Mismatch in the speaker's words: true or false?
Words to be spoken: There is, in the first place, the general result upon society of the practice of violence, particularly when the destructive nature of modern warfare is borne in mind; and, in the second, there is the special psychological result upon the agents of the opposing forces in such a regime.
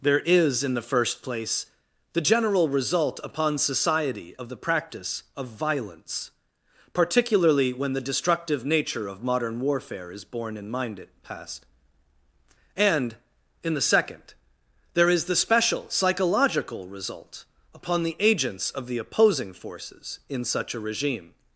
true